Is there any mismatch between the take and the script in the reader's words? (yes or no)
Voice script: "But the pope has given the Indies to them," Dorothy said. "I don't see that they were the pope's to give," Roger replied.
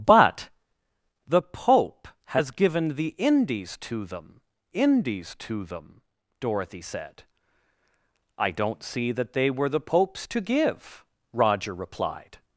yes